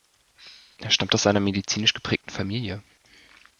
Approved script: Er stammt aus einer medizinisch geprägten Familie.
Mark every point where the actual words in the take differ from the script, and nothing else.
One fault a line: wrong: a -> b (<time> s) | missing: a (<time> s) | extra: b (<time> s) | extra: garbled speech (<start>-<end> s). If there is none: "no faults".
no faults